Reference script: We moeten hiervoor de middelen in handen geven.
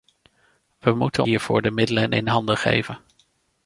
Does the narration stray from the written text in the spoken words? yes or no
no